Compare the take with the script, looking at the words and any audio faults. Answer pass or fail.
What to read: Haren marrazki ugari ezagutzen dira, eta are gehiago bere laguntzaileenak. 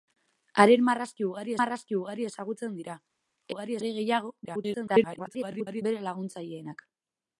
fail